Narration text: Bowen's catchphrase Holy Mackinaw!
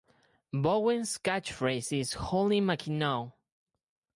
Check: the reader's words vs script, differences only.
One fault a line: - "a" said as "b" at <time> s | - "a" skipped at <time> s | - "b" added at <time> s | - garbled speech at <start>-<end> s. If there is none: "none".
- "is" added at 1.9 s